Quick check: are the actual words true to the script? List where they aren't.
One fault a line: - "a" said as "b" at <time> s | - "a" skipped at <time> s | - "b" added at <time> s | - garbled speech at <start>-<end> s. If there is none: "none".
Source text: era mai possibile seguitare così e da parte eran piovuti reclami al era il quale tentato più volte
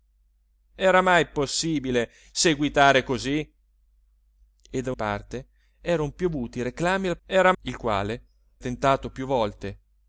none